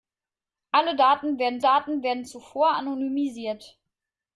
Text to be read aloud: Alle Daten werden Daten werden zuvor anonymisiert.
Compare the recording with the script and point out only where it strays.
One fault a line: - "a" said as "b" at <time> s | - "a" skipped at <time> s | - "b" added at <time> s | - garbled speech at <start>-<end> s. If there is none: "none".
none